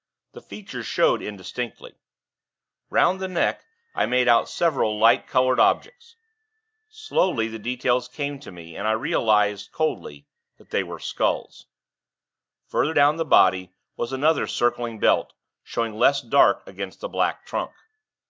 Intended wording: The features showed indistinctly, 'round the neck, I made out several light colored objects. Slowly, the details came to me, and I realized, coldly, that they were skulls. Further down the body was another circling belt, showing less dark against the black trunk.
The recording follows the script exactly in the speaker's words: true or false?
true